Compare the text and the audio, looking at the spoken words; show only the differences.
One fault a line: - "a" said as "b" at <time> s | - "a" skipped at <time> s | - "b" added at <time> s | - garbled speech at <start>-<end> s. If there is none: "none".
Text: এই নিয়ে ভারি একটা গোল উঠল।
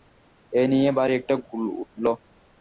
none